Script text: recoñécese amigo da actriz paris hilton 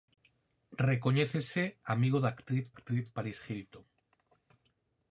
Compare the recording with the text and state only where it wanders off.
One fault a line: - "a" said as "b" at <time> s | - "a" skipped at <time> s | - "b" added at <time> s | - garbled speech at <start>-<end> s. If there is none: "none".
- "actriz" added at 2.7 s